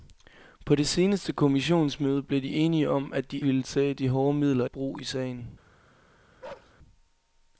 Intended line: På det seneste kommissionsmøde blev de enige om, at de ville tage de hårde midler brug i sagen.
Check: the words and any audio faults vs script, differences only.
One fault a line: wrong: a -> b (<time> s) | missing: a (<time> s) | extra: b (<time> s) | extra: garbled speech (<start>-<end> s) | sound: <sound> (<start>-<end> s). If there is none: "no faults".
sound: bark (6.4-6.7 s)